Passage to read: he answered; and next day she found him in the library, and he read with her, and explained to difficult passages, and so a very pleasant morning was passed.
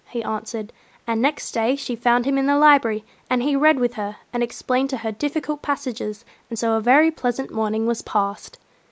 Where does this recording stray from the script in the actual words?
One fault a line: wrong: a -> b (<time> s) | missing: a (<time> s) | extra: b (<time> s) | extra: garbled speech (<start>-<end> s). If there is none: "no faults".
extra: her (5.0 s)